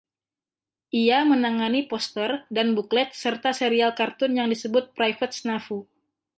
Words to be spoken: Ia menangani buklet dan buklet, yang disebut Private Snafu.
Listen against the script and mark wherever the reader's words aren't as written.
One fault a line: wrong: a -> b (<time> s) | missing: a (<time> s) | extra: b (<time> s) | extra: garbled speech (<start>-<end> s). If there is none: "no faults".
wrong: buklet -> poster (1.9 s)
extra: serta serial kartun (3.1 s)